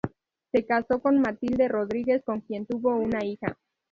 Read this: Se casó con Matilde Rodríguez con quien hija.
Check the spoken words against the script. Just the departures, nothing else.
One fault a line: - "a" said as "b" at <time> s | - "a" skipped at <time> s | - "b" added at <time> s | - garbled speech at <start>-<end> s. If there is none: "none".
- "tuvo una" added at 2.6 s